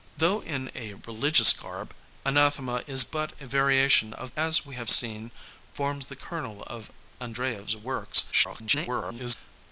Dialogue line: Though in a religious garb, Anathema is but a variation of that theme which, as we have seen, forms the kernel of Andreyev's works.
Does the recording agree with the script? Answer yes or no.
no